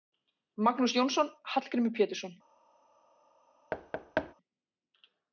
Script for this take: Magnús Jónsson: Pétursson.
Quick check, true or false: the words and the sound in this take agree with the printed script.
false